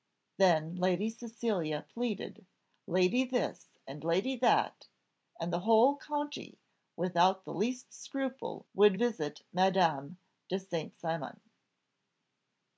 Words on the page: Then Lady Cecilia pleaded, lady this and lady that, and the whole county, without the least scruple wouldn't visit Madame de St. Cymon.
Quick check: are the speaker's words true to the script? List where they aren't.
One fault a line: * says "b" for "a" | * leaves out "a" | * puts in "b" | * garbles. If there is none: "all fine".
* says "would" for "wouldn't"